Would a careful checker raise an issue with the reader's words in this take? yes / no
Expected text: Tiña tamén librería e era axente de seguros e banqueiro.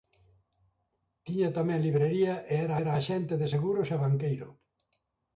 yes